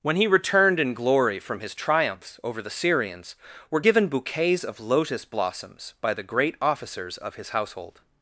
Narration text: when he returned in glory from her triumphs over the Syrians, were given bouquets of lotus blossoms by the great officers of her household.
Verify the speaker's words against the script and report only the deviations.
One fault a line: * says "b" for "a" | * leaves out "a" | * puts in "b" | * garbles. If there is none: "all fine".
* says "his" for "her"
* says "his" for "her"